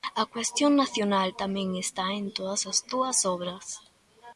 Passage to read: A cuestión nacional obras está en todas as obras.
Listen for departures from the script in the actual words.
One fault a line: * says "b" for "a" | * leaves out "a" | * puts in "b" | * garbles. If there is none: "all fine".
* says "tamén" for "obras"
* puts in "túas"